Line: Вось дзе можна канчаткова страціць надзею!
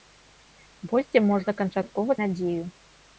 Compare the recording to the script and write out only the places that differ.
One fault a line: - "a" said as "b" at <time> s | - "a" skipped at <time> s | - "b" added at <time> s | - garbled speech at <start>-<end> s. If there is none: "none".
- "страціць" skipped at 2.1 s